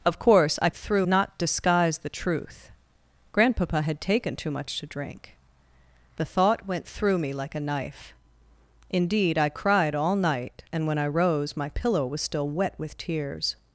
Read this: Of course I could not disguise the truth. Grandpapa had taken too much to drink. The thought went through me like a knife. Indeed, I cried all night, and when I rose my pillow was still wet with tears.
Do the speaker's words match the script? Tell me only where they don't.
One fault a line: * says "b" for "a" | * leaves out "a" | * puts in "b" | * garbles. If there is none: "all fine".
* says "through" for "could"